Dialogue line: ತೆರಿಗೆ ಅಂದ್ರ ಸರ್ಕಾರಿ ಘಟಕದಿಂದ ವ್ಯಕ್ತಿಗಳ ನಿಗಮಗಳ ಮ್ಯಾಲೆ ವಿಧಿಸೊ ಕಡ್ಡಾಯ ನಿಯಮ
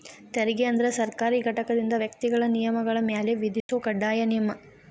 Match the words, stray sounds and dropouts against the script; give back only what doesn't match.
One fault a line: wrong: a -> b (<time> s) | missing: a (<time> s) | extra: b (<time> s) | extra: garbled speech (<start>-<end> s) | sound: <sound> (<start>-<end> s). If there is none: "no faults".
sound: dropout (3.6-3.7 s)